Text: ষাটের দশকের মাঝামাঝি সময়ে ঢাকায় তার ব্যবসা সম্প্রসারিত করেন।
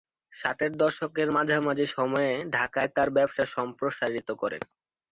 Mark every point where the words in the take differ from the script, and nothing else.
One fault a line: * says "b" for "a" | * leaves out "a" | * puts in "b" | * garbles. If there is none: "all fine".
all fine